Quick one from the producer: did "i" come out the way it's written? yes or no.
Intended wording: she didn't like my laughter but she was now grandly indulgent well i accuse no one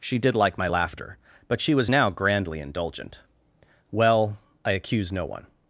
yes